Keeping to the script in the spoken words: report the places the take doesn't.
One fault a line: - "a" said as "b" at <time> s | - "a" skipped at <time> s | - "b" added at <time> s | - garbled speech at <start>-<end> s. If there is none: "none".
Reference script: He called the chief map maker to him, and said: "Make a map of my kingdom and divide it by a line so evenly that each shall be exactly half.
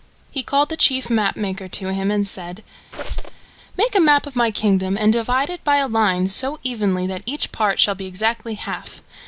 - "part" added at 7.5 s